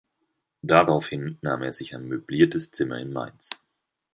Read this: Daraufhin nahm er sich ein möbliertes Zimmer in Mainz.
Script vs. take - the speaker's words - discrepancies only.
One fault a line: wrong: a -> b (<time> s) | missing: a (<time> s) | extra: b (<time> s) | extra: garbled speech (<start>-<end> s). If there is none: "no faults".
no faults